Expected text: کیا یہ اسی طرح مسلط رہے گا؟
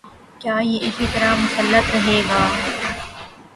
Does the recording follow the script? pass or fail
pass